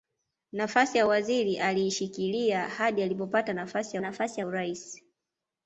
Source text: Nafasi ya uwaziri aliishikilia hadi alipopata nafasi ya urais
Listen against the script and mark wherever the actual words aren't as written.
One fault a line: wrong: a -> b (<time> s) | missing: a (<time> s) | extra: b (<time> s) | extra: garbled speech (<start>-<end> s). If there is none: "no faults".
extra: nafasi (4.0 s)